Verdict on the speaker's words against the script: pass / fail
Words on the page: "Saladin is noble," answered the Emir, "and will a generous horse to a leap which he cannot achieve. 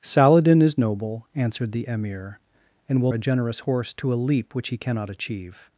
pass